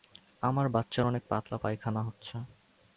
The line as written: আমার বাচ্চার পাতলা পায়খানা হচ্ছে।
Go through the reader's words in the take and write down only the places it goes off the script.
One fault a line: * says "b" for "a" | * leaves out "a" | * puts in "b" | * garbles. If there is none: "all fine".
* puts in "অনেক"